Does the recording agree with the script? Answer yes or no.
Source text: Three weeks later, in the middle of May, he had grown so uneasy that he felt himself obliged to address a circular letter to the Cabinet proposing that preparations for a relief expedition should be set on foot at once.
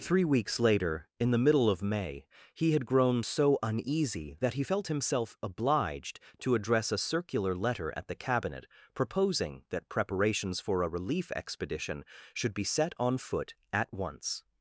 no